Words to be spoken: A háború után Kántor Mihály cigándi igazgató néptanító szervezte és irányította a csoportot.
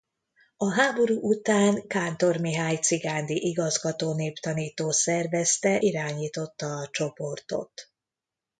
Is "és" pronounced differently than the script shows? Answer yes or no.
yes